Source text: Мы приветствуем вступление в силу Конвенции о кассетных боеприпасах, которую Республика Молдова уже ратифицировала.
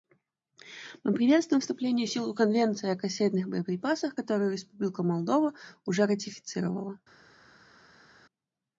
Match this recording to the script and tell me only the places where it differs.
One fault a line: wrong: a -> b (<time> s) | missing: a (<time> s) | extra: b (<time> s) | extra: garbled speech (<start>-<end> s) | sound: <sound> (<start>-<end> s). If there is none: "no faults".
no faults